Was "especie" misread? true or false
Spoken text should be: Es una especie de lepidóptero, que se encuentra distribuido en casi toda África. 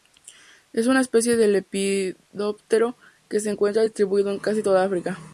false